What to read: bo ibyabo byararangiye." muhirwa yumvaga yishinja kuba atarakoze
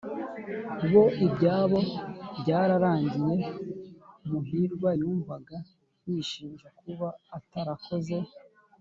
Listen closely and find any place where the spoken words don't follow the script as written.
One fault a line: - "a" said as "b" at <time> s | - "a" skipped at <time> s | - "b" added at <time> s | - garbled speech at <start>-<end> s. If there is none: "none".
none